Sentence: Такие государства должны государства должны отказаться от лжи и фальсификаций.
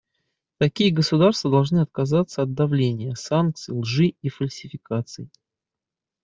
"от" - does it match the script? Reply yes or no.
no